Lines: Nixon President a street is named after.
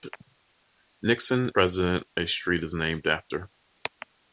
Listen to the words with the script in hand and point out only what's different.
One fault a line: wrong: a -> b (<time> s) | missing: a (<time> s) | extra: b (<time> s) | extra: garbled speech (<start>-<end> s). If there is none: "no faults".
no faults